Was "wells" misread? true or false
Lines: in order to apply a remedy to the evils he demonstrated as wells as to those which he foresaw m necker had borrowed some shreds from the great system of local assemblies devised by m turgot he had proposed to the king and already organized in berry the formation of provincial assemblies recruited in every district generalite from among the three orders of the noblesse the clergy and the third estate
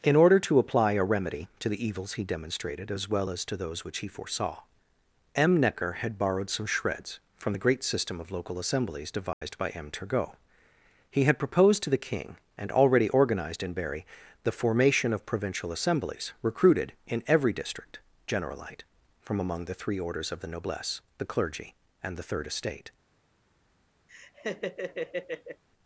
true